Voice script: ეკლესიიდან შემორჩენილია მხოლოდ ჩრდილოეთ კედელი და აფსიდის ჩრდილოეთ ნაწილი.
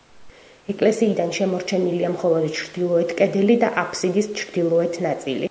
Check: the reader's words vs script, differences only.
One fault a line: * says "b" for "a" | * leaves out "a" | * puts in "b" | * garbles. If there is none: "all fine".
all fine